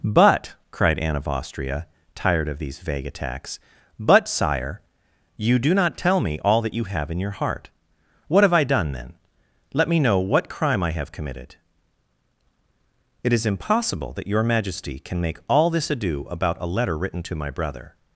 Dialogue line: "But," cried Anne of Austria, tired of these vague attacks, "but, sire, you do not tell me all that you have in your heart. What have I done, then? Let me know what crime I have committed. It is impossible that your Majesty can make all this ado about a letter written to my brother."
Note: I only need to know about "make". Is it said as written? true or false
true